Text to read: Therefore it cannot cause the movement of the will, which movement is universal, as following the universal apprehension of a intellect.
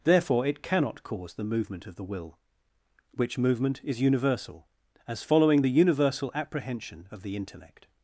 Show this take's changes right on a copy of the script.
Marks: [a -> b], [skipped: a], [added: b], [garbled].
Therefore it cannot cause the movement of the will, which movement is universal, as following the universal apprehension of [a -> the] intellect.